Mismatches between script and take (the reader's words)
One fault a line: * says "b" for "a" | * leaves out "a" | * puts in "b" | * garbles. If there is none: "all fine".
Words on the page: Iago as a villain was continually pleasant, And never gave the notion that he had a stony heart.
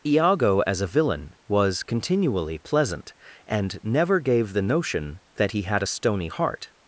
all fine